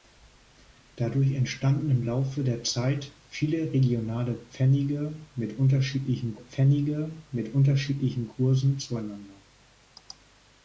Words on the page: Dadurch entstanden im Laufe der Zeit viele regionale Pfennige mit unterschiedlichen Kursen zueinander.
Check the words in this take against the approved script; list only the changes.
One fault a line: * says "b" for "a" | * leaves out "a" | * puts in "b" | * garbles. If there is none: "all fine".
* puts in "Pfennige mit unterschiedlichen"